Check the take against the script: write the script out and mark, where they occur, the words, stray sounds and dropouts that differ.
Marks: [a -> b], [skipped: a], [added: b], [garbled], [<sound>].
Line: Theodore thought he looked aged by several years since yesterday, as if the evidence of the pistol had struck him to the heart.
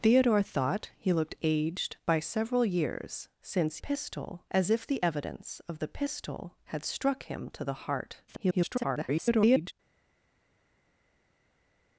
Theodore thought he looked aged by several years since [yesterday, -> pistol] as if the evidence of the pistol had struck him to the heart. [garbled]